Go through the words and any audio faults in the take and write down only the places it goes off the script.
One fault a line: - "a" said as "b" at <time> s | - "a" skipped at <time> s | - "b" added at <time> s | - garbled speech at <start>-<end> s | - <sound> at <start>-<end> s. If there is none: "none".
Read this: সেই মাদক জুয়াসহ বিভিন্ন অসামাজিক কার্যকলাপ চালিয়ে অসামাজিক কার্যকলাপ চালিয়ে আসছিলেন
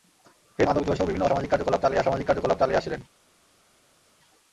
none